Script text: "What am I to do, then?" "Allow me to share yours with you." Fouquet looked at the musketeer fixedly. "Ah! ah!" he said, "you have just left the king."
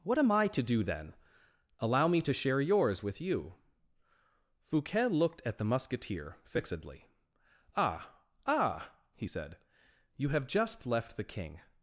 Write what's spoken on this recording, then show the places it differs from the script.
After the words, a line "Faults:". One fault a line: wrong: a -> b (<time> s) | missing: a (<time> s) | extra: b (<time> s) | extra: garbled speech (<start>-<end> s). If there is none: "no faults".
"What am I to do, then?" "Allow me to share yours with you." Fouquet looked at the musketeer fixedly. "Ah! ah!" he said, "you have just left the king."
Faults:
no faults